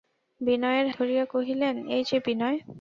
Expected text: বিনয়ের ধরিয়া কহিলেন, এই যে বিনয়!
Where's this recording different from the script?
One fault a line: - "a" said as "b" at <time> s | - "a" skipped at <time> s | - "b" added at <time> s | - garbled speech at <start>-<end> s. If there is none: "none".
none